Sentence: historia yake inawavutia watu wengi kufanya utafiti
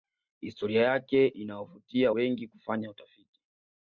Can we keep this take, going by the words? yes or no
no